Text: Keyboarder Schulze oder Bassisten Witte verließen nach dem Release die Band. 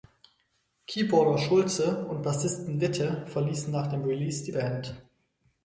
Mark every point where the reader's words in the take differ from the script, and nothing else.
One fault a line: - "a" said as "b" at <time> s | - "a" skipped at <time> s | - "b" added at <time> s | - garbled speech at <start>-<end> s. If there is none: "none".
- "oder" said as "und" at 2.1 s